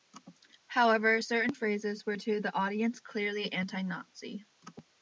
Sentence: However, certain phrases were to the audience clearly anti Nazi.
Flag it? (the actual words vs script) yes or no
no